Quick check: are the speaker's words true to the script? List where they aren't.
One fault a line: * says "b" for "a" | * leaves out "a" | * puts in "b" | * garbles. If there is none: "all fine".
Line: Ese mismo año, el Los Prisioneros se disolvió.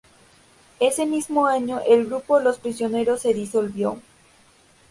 * puts in "grupo"